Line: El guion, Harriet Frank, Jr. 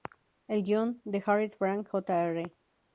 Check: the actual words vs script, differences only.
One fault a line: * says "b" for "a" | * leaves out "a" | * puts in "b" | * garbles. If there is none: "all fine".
* puts in "de"